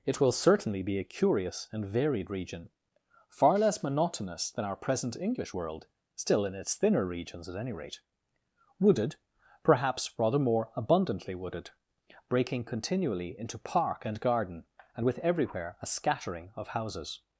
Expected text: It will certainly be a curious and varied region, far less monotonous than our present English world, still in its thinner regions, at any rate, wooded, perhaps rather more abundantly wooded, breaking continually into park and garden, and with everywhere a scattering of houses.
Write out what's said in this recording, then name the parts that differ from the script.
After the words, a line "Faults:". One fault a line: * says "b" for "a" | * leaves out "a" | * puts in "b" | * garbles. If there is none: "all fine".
It will certainly be a curious and varied region, far less monotonous than our present English world, still in its thinner regions, at any rate, wooded, perhaps rather more abundantly wooded, breaking continually into park and garden, and with everywhere a scattering of houses.
Faults:
all fine